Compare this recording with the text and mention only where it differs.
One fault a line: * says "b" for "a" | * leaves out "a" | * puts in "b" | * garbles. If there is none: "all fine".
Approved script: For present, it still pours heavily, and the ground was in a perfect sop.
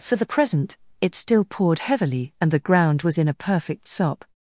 * puts in "the"
* says "poured" for "pours"